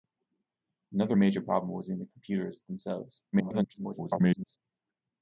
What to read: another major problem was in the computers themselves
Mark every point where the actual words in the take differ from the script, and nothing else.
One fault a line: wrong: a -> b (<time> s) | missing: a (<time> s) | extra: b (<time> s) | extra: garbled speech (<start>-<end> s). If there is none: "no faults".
extra: garbled speech (3.3-4.6 s)